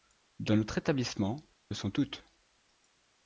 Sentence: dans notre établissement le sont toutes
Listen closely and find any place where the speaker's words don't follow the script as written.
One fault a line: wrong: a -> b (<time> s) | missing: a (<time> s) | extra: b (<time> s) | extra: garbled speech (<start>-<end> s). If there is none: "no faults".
no faults